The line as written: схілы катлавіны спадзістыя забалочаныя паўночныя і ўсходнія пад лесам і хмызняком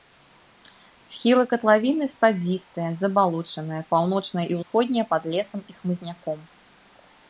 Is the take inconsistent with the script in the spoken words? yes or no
no